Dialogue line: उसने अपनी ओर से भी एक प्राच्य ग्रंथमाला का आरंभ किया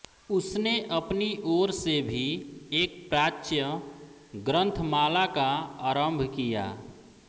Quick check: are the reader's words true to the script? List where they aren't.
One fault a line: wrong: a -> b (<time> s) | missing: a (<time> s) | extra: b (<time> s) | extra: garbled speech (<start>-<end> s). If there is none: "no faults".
no faults